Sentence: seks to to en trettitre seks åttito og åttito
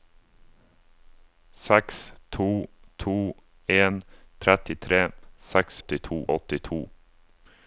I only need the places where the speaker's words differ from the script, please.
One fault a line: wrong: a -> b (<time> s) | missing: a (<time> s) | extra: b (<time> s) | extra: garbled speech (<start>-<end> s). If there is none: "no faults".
no faults